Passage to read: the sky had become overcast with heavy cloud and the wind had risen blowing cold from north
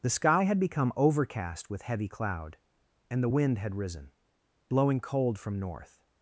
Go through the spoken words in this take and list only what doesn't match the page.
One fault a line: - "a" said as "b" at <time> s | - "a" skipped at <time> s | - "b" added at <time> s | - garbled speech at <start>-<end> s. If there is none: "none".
none